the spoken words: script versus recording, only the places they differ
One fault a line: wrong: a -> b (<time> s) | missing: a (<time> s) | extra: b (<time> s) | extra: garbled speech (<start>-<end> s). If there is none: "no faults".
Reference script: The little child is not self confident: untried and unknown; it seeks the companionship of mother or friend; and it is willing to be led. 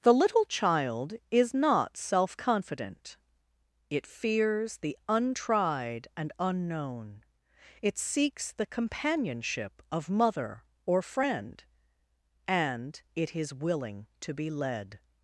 extra: it fears the (3.9 s)